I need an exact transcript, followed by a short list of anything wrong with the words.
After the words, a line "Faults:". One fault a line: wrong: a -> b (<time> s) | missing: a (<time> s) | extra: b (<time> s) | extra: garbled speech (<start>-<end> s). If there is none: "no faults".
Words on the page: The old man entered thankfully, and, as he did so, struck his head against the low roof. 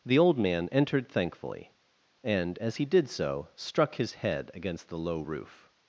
The old man entered thankfully, and, as he did so, struck his head against the low roof.
Faults:
no faults